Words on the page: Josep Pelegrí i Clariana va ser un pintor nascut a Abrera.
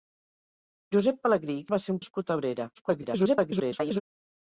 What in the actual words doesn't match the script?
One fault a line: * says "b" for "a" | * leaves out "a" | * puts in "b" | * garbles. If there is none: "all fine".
* leaves out "Clariana"
* leaves out "pintor"
* garbles